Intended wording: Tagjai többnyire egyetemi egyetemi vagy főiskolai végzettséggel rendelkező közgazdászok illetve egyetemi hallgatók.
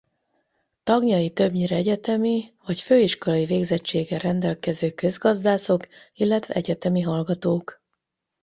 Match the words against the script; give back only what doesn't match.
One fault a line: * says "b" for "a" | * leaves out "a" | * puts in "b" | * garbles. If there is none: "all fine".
* leaves out "egyetemi"